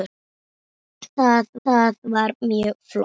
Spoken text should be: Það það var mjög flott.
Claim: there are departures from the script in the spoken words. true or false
false